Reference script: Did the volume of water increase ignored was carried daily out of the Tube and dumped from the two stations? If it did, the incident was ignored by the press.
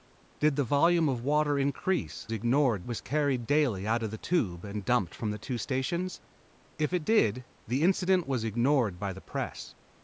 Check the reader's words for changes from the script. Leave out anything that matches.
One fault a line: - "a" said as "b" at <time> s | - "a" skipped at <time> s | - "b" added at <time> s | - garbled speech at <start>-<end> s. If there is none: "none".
none